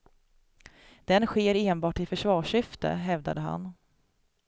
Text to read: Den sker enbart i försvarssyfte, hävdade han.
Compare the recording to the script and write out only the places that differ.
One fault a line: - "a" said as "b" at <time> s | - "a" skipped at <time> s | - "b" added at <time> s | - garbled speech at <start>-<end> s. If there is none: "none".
none